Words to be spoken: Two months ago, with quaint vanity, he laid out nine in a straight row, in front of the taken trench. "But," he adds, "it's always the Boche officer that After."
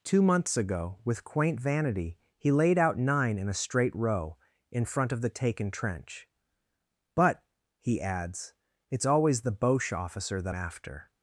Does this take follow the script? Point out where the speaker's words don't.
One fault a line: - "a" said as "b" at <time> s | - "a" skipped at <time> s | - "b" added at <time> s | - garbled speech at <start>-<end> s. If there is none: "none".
none